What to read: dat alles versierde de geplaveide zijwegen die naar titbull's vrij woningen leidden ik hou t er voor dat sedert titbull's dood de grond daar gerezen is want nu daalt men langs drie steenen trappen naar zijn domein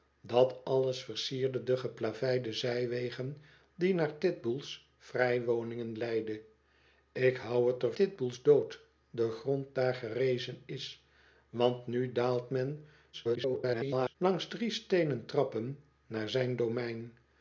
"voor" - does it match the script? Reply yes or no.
no